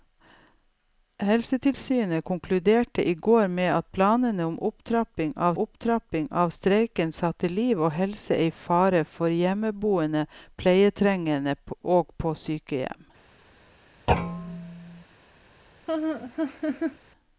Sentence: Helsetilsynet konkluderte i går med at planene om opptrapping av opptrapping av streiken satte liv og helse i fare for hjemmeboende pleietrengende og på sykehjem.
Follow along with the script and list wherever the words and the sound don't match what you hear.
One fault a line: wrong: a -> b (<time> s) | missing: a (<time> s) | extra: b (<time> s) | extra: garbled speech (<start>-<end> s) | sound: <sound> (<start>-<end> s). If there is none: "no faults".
sound: thud (14.1-15.0 s)
sound: laugh (15.9-17.0 s)